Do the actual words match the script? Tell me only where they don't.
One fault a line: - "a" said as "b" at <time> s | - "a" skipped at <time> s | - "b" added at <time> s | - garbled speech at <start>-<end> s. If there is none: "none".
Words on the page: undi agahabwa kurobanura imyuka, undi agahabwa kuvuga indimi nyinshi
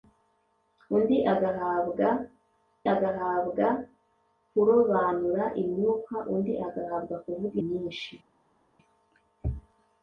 - "agahabwa" added at 2.9 s
- "indimi" skipped at 7.6 s